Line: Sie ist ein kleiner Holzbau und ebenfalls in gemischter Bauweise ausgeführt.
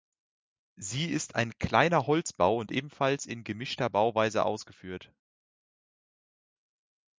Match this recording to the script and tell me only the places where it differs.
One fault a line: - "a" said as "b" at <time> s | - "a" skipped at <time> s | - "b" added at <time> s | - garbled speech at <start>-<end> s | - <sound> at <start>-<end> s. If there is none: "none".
none